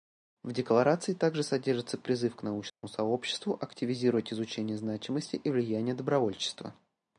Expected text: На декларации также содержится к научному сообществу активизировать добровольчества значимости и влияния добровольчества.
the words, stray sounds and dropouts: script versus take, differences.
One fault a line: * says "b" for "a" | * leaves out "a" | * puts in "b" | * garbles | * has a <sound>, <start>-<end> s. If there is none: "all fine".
* says "В" for "На"
* puts in "призыв"
* has a dropout, 2.7-2.8 s
* says "изучение" for "добровольчества"